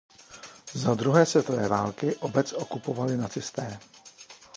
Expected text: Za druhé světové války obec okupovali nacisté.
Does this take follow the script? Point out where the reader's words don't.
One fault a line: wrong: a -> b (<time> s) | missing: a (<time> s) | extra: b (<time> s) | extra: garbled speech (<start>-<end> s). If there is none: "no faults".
no faults